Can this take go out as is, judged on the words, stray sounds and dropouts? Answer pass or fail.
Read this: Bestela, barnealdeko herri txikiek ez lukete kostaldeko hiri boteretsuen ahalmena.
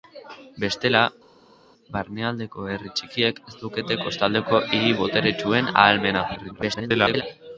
fail